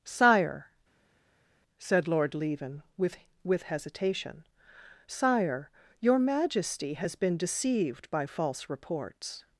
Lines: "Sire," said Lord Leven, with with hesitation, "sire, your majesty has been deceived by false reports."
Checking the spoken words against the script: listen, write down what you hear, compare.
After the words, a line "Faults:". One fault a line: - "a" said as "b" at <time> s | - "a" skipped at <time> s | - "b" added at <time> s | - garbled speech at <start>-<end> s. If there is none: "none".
"Sire," said Lord Leven, with with hesitation, "sire, your majesty has been deceived by false reports."
Faults:
none